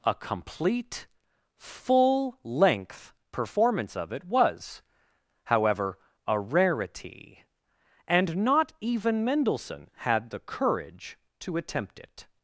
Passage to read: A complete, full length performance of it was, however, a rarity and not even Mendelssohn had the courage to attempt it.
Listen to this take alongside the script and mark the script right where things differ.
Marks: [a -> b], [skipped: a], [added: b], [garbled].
A complete, full length performance of it was, however, a rarity and not even Mendelssohn had the courage to attempt it.